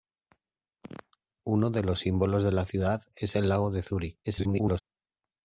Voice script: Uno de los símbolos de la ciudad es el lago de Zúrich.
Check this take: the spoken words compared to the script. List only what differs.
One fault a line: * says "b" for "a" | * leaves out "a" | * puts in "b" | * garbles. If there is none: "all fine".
* garbles